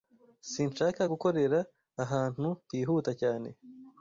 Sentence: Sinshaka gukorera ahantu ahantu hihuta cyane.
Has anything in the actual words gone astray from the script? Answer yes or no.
yes